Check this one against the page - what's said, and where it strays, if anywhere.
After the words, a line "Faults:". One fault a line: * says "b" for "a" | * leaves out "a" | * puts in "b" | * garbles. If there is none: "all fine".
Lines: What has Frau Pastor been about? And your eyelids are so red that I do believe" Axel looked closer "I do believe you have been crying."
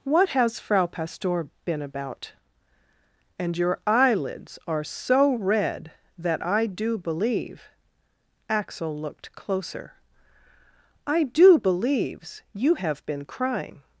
What has Frau Pastor been about? And your eyelids are so red that I do believe" Axel looked closer "I do believes you have been crying."
Faults:
* says "believes" for "believe"